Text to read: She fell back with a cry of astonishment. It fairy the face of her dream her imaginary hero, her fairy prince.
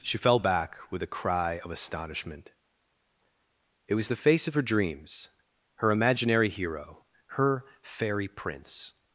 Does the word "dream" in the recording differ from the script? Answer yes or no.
yes